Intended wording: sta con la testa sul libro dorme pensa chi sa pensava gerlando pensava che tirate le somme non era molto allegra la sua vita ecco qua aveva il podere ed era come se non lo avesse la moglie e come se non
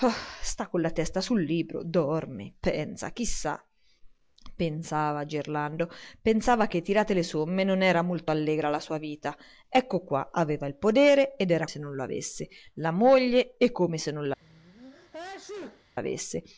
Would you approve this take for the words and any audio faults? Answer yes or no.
no